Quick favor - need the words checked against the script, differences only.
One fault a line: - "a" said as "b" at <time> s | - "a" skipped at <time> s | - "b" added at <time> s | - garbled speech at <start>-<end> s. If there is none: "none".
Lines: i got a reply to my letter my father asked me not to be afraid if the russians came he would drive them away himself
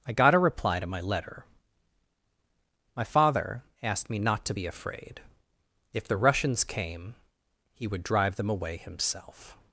none